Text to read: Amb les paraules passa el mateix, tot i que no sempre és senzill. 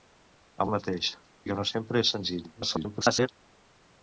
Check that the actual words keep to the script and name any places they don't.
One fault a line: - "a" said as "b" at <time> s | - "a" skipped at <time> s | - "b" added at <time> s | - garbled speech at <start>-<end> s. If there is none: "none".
- "les paraules passa" skipped at 0.7 s
- "tot" skipped at 1.1 s
- garbled speech at 2.6-3.3 s